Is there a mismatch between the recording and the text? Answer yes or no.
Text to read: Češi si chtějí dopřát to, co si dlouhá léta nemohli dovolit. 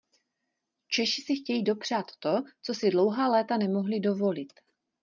no